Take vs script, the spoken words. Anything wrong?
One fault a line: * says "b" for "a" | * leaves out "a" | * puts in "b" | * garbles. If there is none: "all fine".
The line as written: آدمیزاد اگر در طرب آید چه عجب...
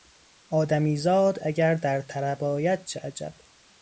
all fine